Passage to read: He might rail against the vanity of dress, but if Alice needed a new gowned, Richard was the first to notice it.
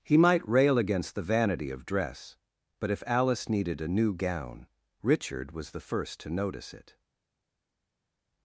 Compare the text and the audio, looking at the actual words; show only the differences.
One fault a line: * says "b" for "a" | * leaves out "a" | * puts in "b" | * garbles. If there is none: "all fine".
* says "gown" for "gowned"